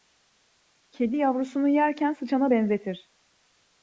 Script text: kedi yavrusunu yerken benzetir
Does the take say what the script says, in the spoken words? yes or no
no